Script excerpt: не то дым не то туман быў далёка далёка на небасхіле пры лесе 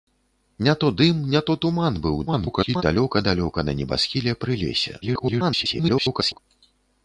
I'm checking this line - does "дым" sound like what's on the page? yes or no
yes